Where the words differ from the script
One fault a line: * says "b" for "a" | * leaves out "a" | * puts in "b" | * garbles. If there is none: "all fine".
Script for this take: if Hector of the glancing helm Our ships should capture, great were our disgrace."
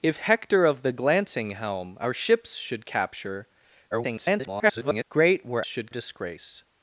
* garbles
* says "should" for "our"